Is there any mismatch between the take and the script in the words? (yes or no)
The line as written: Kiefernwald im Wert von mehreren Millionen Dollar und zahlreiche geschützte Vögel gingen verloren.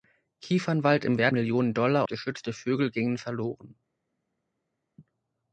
yes